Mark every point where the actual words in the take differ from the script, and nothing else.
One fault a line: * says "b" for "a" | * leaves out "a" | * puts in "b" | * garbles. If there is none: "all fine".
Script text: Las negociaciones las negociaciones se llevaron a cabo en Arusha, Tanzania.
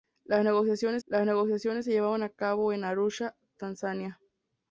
all fine